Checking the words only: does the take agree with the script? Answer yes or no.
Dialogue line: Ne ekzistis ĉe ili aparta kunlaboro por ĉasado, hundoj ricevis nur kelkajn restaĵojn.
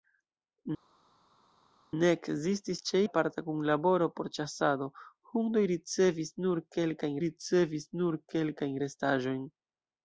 no